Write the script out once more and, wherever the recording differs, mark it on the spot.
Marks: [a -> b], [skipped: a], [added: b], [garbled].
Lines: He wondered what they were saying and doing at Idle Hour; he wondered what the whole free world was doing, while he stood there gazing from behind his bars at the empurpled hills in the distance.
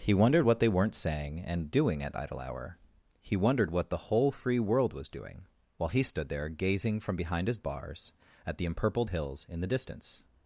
He wondered what they [were -> weren't] saying and doing at Idle Hour; he wondered what the whole free world was doing, while he stood there gazing from behind his bars at the empurpled hills in the distance.